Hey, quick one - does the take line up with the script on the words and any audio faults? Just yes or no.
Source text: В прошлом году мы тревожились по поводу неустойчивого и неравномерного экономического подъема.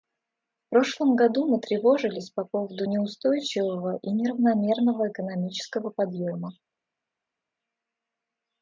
yes